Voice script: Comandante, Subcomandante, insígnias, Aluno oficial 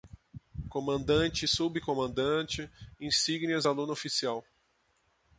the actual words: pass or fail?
pass